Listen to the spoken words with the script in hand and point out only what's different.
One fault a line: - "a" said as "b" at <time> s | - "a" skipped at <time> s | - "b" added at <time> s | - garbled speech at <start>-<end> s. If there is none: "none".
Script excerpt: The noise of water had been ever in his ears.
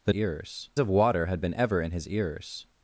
- "noise" said as "ears" at 0.1 s